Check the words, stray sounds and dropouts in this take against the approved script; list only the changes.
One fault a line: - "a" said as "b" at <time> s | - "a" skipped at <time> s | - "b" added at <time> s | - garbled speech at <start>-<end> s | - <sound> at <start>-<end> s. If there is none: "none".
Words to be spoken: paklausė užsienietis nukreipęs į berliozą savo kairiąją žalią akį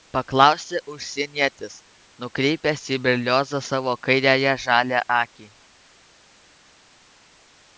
none